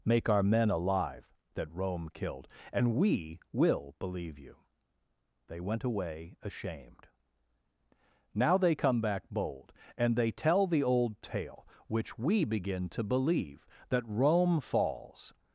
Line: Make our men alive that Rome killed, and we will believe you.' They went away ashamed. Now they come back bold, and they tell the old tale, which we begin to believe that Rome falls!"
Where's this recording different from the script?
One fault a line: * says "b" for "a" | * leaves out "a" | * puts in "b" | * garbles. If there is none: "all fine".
all fine